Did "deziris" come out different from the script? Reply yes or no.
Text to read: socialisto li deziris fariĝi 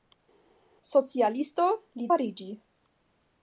yes